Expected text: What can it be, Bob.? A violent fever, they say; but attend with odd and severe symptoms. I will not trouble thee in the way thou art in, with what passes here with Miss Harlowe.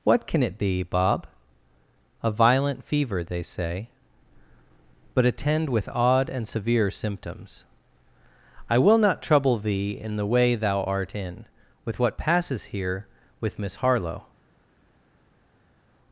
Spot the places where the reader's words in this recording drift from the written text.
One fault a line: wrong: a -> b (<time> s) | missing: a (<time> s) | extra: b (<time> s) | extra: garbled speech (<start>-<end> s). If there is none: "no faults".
no faults